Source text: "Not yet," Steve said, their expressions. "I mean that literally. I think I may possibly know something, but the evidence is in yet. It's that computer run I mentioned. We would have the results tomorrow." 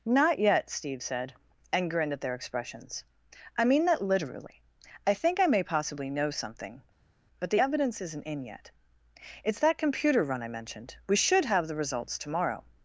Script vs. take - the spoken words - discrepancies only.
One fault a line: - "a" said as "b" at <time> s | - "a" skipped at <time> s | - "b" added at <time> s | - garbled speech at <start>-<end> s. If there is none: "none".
- "and grinned at" added at 1.7 s
- "is" said as "isn't" at 8.0 s
- "would" said as "should" at 11.2 s